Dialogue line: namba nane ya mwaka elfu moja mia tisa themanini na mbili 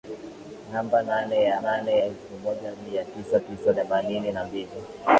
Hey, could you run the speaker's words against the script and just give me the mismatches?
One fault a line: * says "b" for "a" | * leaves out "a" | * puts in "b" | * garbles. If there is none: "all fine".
* says "nane" for "mwaka"
* puts in "tisa"